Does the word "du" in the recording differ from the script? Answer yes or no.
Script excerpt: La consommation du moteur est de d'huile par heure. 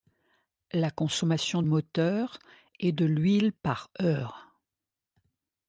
yes